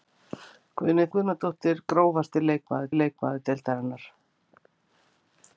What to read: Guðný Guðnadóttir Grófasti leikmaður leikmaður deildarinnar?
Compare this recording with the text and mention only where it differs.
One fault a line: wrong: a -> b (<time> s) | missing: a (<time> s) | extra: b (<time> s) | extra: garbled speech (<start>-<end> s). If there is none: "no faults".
no faults